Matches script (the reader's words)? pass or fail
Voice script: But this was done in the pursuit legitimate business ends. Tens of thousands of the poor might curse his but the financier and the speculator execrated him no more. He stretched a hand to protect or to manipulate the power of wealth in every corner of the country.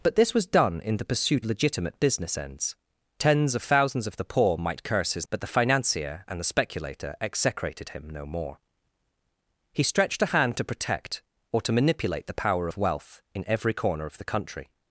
pass